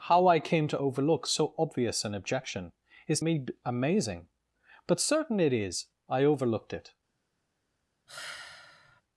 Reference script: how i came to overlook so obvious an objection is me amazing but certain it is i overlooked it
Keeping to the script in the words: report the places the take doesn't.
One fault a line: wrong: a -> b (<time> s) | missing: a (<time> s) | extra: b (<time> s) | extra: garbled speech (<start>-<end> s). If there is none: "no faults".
no faults